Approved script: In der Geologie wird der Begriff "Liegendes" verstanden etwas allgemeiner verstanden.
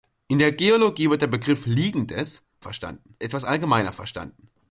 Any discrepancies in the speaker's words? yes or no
no